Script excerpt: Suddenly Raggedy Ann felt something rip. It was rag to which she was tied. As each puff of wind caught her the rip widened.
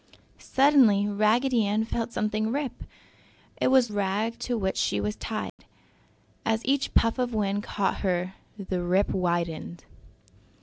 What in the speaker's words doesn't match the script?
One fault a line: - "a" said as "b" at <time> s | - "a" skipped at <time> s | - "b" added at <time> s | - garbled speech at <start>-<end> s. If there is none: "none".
none